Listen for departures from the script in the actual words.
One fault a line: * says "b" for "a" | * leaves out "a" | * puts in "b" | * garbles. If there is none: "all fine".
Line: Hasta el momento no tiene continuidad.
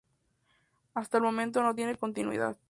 all fine